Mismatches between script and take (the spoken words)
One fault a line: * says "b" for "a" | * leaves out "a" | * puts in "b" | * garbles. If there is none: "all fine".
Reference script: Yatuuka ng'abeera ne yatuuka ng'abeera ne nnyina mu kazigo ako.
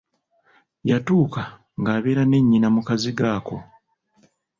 * leaves out "yatuuka ng'abeera ne"